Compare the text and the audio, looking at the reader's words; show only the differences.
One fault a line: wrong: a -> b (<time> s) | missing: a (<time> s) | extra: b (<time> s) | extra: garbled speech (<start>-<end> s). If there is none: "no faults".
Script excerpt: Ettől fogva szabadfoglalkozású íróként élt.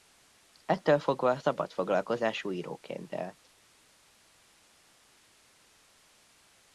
no faults